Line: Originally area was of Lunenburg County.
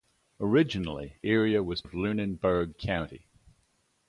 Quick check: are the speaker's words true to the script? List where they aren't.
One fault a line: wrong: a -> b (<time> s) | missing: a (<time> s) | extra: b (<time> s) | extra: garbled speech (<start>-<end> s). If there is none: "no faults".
no faults